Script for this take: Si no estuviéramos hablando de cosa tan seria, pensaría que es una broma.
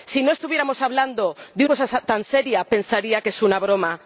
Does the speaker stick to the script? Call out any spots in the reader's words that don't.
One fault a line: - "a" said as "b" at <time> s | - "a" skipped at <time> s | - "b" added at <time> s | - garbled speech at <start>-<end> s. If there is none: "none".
none